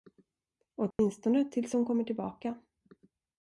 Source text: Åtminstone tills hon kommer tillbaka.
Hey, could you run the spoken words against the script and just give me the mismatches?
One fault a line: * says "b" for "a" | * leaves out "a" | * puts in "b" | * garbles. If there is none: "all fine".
all fine